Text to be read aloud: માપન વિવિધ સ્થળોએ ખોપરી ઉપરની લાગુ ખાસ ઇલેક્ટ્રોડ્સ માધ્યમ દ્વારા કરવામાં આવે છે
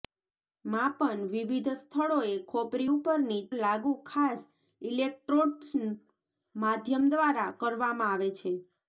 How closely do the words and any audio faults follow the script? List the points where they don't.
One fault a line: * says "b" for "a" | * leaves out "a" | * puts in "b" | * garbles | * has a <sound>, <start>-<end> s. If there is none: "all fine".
all fine